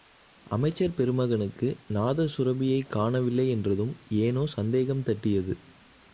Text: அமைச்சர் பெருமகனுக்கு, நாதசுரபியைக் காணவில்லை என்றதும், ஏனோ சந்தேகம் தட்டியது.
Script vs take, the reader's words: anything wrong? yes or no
no